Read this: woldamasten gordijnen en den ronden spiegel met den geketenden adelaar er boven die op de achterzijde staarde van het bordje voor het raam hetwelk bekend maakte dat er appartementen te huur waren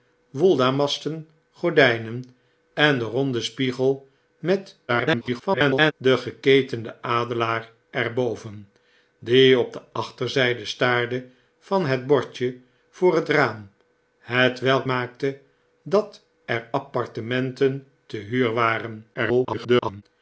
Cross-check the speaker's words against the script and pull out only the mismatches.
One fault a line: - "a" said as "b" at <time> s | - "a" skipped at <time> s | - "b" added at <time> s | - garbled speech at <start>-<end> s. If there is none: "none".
- garbled speech at 4.9-5.9 s
- "bekend" skipped at 14.9 s
- garbled speech at 19.1-20.0 s